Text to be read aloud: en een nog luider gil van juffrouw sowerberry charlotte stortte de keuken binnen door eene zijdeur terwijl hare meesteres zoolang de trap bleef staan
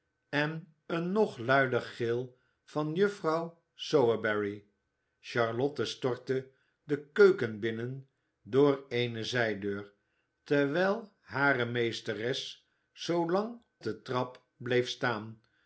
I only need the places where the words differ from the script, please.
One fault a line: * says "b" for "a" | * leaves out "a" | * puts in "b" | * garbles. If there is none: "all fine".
all fine